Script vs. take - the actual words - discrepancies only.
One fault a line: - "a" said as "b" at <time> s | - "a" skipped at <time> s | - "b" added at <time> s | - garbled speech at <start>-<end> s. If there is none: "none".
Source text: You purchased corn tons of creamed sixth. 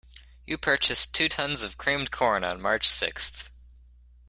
- "corn" said as "two" at 1.1 s
- "corn on March" added at 2.1 s